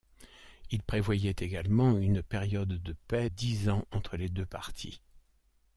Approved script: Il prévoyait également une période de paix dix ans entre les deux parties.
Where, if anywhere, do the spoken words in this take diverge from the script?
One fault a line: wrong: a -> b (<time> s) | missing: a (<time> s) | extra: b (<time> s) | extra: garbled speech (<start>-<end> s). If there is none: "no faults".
no faults